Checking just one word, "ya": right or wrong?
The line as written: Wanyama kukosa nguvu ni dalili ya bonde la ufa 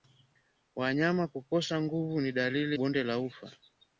wrong